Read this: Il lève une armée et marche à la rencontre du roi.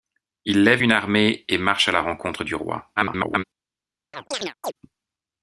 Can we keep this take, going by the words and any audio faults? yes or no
no